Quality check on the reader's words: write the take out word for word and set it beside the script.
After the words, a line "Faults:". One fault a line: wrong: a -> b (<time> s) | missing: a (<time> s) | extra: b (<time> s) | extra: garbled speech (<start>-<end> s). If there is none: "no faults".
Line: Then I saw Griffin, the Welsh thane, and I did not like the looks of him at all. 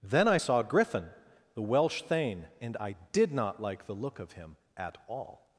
Then I saw Griffin, the Welsh thane, and I did not like the look of him at all.
Faults:
wrong: looks -> look (3.9 s)